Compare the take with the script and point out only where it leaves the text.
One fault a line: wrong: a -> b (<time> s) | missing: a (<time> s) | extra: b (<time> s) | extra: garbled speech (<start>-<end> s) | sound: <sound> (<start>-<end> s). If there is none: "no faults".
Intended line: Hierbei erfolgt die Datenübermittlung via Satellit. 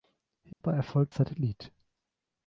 sound: dropout (0.5-0.6 s)
missing: die Datenübermittlung via (1.1 s)